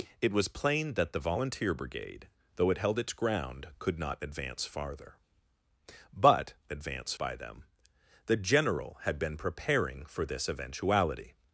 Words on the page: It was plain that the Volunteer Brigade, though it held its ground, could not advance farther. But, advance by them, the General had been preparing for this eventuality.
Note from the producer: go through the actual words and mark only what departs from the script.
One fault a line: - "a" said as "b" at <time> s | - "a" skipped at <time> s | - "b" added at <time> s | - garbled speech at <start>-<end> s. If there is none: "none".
none